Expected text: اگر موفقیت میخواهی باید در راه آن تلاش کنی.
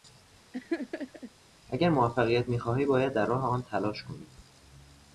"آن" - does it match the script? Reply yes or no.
yes